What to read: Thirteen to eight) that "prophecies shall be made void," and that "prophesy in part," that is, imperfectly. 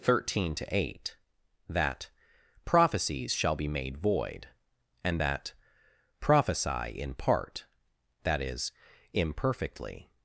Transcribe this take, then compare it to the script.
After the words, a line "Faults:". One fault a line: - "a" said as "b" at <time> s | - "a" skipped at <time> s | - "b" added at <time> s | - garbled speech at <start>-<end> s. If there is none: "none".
Thirteen to eight) that "prophecies shall be made void," and that "prophesy in part," that is, imperfectly.
Faults:
none